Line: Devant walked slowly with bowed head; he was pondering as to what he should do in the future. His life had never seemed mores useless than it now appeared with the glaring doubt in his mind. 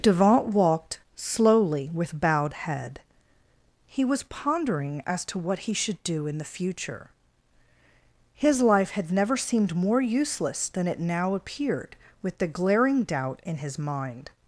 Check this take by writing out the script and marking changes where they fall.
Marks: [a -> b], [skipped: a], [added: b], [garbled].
Devant walked slowly with bowed head; he was pondering as to what he should do in the future. His life had never seemed [mores -> more] useless than it now appeared with the glaring doubt in his mind.